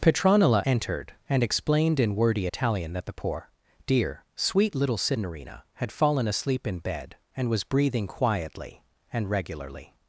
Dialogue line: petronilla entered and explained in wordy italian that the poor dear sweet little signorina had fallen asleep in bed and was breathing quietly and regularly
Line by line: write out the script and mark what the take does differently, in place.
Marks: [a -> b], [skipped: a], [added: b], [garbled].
petronilla entered and explained in wordy italian that the poor dear sweet little signorina had fallen asleep in bed and was breathing quietly and regularly